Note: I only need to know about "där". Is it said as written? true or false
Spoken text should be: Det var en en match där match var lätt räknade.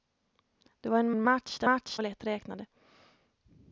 true